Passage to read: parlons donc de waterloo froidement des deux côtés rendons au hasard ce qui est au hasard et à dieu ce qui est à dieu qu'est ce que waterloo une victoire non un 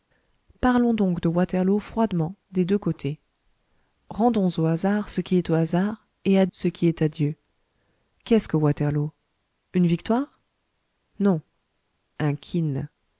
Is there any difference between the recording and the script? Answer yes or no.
yes